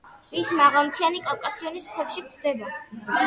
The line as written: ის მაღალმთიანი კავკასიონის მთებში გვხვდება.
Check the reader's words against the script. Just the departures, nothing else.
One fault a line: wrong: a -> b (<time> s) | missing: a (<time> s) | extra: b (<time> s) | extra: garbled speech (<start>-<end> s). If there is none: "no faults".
no faults